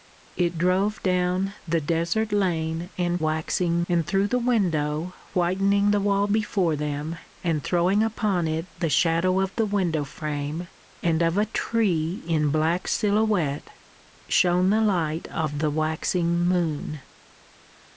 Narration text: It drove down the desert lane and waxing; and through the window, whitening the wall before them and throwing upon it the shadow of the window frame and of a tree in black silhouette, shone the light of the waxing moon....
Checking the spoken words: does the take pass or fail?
pass